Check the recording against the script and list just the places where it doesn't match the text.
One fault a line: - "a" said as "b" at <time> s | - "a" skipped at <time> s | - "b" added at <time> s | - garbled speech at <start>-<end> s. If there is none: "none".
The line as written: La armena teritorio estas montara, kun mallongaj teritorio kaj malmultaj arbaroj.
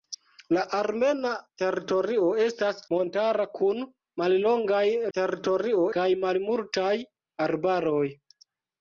none